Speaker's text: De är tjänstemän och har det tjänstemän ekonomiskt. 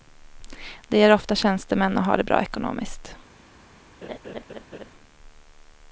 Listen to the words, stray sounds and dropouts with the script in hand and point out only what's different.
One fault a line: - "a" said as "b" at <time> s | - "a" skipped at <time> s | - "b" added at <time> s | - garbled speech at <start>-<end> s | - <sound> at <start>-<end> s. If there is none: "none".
- "ofta" added at 1.1 s
- "tjänstemän" said as "bra" at 2.2 s
- laugh at 4.0-4.9 s